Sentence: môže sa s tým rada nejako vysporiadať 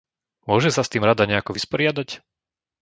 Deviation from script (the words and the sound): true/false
false